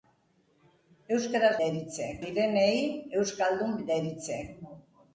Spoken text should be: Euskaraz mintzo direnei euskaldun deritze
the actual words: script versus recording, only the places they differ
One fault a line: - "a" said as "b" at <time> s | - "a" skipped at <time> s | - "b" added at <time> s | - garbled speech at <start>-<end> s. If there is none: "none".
- "mintzo" said as "deritze" at 1.6 s